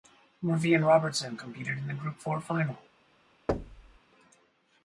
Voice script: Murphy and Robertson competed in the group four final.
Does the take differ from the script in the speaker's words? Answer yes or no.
no